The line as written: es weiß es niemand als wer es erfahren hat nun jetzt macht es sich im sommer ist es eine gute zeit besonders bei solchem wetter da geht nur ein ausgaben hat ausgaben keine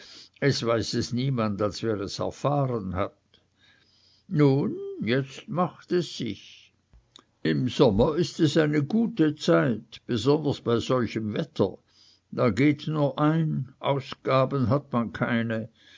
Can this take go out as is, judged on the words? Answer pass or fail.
fail